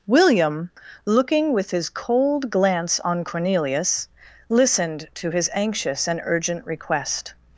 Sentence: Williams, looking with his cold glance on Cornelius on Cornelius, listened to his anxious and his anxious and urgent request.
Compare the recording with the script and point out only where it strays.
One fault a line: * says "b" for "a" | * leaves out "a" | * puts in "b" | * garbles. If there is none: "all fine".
* says "William" for "Williams"
* leaves out "on Cornelius"
* leaves out "his anxious and"